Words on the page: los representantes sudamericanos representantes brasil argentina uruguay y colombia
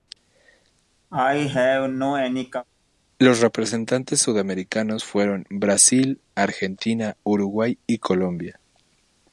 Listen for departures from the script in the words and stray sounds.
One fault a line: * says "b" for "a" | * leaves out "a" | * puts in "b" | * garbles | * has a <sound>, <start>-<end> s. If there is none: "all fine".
* has a cough, 1.1-2.7 s
* says "fueron" for "representantes"